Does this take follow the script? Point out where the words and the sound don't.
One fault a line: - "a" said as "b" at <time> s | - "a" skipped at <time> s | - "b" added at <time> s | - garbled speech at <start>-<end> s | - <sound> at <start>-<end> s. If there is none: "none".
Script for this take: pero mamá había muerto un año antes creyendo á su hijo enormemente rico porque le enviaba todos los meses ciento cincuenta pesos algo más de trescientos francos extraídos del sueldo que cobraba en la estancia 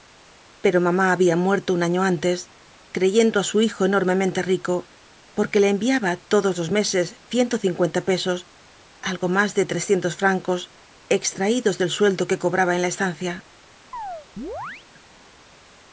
- chirp at 13.9-14.9 s